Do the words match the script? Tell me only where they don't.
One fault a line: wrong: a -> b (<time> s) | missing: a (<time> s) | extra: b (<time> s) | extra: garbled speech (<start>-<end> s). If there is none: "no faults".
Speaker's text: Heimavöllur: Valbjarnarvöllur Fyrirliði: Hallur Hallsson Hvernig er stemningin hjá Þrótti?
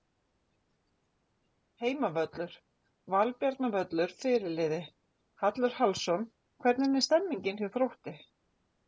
no faults